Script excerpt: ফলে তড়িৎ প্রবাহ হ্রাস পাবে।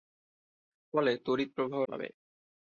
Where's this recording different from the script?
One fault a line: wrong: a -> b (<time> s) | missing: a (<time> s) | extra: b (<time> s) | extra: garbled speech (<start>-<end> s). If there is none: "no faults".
missing: হ্রাস (1.8 s)